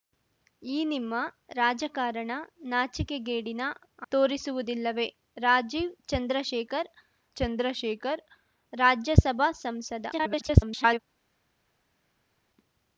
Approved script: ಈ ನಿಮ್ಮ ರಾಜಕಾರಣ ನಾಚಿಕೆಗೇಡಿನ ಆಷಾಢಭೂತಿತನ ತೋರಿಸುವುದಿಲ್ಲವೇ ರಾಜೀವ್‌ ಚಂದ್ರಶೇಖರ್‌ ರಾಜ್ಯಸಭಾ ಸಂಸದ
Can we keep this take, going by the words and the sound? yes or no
no